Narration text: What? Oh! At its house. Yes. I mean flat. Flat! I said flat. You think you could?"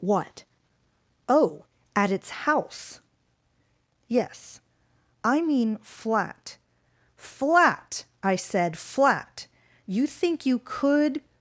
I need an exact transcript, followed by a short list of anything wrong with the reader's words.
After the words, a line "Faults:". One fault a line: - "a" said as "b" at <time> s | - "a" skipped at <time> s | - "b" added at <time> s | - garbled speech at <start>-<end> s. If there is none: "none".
What? Oh! At its house. Yes. I mean flat. Flat! I said flat. You think you could?"
Faults:
none